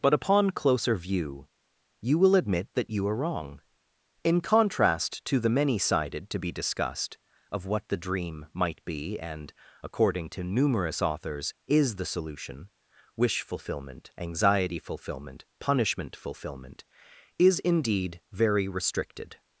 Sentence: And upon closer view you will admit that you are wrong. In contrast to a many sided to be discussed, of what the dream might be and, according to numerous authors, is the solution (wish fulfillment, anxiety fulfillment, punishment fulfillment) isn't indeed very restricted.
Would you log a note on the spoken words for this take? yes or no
yes